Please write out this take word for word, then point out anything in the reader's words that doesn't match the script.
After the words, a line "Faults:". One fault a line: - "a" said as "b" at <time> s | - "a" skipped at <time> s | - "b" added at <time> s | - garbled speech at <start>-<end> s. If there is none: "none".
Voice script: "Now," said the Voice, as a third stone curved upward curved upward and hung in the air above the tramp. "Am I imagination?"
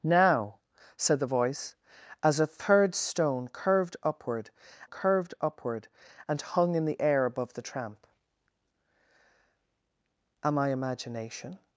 "Now," said the Voice, as a third stone curved upward curved upward and hung in the air above the tramp. "Am I imagination?"
Faults:
none